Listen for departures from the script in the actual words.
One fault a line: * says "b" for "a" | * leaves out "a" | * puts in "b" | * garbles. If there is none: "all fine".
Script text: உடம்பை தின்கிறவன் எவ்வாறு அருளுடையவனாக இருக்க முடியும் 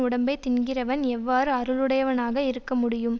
all fine